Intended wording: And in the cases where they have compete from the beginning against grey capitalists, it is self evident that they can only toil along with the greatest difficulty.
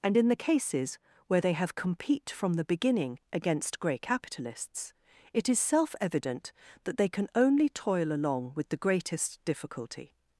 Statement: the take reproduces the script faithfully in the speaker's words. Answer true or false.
true